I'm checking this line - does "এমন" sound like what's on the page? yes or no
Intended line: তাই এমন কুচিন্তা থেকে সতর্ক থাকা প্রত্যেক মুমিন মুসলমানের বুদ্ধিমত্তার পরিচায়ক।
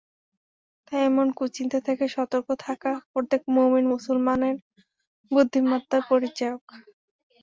yes